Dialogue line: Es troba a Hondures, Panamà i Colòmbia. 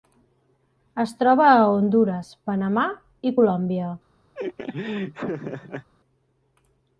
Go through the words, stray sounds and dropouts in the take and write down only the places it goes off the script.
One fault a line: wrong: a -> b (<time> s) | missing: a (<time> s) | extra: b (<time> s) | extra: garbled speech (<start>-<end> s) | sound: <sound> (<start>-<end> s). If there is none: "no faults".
sound: laugh (4.3-5.9 s)